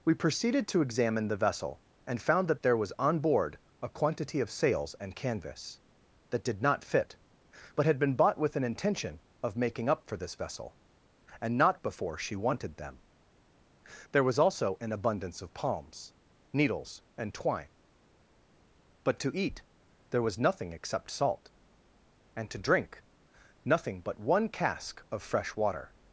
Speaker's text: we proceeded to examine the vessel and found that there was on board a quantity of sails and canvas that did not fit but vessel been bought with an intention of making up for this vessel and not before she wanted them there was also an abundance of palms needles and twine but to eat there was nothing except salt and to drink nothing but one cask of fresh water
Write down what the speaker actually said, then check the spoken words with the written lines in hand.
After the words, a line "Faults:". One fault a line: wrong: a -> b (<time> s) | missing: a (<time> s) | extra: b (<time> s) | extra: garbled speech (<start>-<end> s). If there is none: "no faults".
we proceeded to examine the vessel and found that there was on board a quantity of sails and canvas that did not fit but had been bought with an intention of making up for this vessel and not before she wanted them there was also an abundance of palms needles and twine but to eat there was nothing except salt and to drink nothing but one cask of fresh water
Faults:
wrong: vessel -> had (7.8 s)